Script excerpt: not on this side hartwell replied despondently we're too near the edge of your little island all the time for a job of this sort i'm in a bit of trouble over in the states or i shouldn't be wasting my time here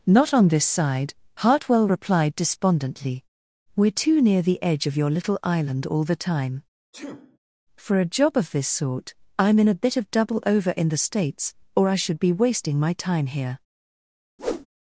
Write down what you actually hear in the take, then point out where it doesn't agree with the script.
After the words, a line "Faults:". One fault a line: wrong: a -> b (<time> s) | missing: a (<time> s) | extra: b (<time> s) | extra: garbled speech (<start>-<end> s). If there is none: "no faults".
not on this side hartwell replied despondently we're too near the edge of your little island all the time for a job of this sort i'm in a bit of double over in the states or i should be wasting my time here
Faults:
wrong: trouble -> double (10.1 s)
wrong: shouldn't -> should (11.9 s)